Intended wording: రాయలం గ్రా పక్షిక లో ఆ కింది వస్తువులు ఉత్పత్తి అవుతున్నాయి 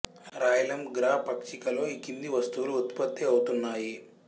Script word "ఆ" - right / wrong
wrong